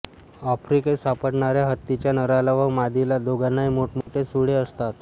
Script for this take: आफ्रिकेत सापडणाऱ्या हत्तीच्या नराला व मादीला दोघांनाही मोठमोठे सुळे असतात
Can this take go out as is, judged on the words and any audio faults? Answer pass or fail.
fail